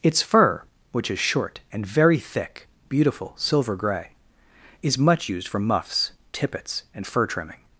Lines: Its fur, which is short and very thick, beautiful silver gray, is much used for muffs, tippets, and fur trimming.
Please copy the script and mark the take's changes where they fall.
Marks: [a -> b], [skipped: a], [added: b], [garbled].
Its fur, which is short and very thick, beautiful silver gray, is much used for muffs, tippets, and fur trimming.